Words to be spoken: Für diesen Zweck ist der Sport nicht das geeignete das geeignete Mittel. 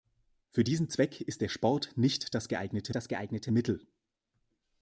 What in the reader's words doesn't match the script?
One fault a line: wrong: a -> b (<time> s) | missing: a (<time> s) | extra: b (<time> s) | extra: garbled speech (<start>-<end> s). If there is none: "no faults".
no faults